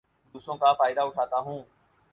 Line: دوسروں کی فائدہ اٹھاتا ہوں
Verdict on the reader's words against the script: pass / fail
fail